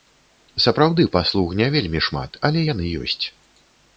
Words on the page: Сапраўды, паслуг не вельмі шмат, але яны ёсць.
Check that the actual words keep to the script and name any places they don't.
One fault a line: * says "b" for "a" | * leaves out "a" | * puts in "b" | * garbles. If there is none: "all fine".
all fine